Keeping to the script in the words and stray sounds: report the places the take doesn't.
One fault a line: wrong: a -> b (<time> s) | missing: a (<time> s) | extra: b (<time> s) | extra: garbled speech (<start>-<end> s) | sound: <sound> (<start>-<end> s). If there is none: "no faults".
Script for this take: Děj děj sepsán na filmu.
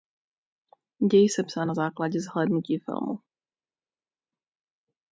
missing: děj (1.3 s)
extra: základě zhlédnutí (1.7 s)